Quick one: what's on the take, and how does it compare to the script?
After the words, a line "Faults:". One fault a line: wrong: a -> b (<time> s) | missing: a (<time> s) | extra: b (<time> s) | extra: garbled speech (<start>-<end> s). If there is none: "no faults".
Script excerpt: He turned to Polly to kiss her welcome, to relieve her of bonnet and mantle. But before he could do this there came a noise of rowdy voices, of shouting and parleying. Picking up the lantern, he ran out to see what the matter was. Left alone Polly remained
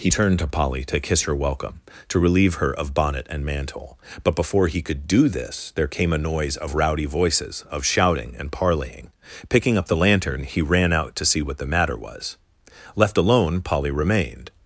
He turned to Polly to kiss her welcome, to relieve her of bonnet and mantle. But before he could do this there came a noise of rowdy voices, of shouting and parleying. Picking up the lantern, he ran out to see what the matter was. Left alone Polly remained
Faults:
no faults